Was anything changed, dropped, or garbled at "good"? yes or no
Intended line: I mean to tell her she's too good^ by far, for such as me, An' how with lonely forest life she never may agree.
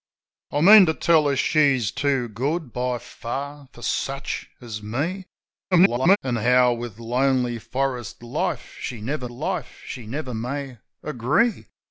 no